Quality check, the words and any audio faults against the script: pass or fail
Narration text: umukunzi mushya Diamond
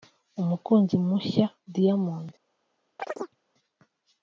fail